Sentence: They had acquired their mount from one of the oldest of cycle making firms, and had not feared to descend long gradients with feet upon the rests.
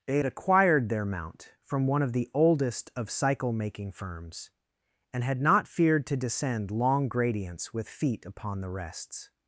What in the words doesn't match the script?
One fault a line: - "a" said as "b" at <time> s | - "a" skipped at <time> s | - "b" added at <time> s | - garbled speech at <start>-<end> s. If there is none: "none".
none